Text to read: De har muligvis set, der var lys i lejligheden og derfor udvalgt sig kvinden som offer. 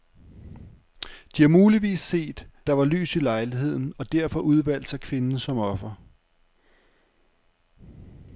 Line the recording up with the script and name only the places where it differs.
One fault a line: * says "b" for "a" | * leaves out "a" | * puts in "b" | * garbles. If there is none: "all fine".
all fine